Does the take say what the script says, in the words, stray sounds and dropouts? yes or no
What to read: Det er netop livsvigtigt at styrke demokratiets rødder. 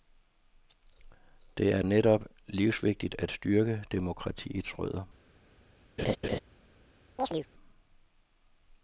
no